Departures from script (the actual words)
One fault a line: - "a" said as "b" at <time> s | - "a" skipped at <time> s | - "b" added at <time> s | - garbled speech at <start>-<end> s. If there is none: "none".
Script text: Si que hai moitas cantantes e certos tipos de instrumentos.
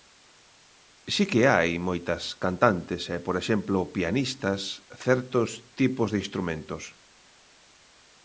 - "por exemplo pianistas" added at 3.3 s